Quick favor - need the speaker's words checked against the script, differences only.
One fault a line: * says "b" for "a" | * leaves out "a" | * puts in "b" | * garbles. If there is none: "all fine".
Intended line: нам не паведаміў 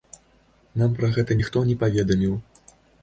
* puts in "пра гэта ніхто"